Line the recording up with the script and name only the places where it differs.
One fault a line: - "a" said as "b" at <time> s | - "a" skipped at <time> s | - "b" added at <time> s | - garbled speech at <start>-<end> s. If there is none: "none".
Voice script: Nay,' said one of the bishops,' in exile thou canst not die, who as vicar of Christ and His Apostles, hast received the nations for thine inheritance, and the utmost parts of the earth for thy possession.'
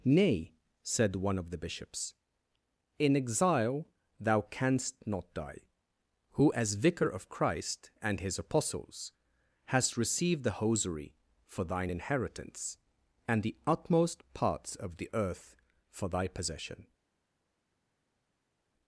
- "nations" said as "hosiery" at 10.6 s